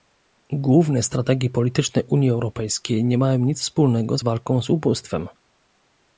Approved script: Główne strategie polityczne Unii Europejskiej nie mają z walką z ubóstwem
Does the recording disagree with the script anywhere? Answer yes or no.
yes